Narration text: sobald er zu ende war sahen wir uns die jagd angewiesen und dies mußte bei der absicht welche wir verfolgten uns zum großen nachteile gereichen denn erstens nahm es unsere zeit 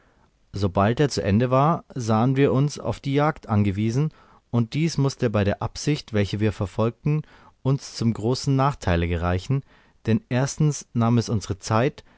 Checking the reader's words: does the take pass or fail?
fail